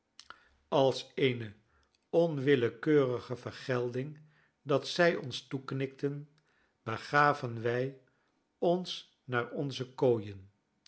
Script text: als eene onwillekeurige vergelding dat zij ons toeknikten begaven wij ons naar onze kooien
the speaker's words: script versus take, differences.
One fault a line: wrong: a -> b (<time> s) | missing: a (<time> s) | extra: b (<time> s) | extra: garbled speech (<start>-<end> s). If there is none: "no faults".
no faults